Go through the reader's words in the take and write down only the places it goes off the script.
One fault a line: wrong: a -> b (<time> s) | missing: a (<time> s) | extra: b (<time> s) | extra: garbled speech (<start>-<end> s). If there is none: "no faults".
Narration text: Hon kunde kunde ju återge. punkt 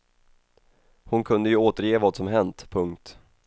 missing: kunde (1.5 s)
extra: vad som hänt (2.0 s)